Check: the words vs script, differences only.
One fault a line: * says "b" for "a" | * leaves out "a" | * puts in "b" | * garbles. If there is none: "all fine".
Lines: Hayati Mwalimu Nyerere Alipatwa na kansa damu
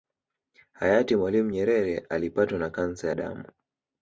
all fine